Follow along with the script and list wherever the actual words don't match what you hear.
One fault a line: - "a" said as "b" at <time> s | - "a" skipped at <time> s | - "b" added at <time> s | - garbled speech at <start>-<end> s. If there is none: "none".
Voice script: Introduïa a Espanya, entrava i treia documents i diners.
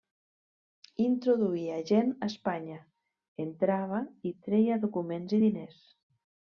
- "gent" added at 1.9 s